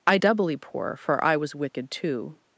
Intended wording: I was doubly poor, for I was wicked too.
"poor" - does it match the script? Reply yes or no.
yes